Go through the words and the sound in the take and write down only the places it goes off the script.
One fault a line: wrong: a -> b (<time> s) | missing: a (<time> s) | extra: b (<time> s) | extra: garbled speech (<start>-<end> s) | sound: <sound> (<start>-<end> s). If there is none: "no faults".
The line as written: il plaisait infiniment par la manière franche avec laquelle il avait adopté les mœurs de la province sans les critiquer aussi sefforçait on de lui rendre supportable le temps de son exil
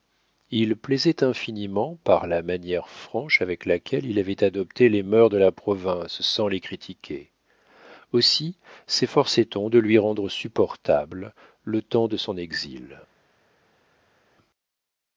no faults